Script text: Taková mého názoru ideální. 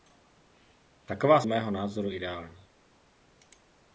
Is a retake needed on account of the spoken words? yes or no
no